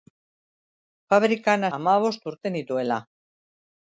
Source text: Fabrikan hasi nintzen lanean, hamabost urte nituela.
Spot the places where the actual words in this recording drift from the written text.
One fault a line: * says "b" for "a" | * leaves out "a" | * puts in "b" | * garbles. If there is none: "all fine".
* leaves out "hasi nintzen lanean"